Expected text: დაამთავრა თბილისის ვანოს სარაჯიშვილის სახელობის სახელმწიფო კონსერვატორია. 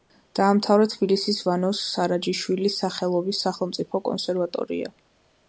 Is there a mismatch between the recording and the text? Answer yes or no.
no